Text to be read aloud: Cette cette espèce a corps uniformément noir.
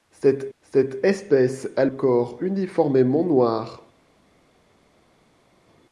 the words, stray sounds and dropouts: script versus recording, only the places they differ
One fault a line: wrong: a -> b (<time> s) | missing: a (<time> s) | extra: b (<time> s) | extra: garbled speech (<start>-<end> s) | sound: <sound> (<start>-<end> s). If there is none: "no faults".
no faults